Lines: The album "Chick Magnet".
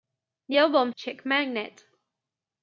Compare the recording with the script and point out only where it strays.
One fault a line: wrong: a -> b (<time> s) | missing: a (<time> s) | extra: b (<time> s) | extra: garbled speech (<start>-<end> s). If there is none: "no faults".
no faults